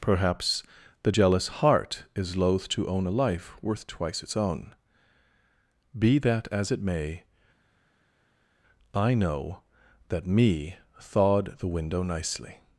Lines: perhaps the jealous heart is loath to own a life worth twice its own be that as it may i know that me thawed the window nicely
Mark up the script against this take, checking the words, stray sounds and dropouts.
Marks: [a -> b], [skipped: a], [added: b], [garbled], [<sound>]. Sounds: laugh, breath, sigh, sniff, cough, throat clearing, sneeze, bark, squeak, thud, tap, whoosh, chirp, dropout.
perhaps the jealous heart is loath to own a life worth twice its own be that as it may i know that me thawed the window nicely